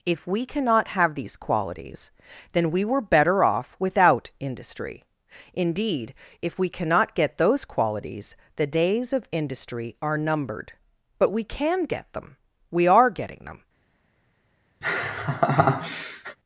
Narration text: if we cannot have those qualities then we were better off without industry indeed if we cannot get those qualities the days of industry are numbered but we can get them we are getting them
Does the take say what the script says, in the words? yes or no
no